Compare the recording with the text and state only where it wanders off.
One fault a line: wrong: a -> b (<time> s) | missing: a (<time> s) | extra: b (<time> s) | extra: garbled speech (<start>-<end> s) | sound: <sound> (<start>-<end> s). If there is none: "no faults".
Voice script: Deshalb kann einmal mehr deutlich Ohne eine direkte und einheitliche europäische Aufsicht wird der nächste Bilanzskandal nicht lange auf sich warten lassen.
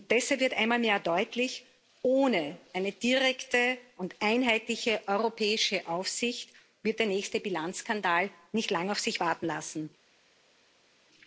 wrong: kann -> wird (0.4 s)